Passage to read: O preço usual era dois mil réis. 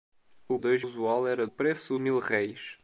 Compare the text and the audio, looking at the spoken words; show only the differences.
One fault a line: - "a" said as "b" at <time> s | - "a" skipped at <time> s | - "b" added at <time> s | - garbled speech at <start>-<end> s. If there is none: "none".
- "preço" said as "dois" at 0.5 s
- "dois" said as "preço" at 1.4 s